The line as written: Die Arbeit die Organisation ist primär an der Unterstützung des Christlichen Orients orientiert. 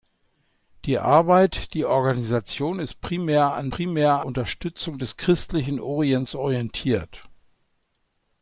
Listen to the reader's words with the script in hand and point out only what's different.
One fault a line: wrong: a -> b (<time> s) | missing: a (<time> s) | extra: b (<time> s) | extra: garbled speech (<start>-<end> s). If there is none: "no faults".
wrong: der -> primär (3.7 s)